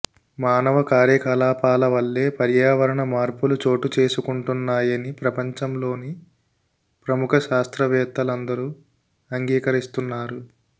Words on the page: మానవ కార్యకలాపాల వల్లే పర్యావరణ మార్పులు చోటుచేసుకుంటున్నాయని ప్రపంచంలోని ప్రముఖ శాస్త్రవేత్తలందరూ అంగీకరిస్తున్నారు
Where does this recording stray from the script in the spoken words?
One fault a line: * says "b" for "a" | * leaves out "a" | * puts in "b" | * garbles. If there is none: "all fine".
all fine